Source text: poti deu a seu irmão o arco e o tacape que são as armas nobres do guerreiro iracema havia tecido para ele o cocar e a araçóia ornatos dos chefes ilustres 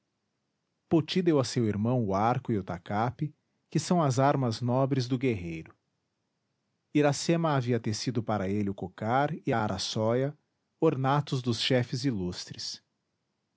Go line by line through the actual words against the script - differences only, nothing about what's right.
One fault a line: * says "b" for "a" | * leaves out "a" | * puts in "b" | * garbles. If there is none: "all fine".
all fine